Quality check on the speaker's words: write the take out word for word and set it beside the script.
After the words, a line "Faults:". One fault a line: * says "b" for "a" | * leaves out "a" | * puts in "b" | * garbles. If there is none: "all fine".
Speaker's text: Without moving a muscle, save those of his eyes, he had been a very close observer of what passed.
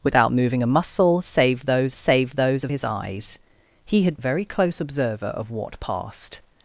Without moving a muscle, save those save those of his eyes, he had a very close observer of what passed.
Faults:
* puts in "save those"
* leaves out "been"